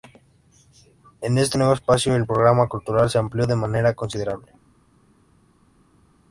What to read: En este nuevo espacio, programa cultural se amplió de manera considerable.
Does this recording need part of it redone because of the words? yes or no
yes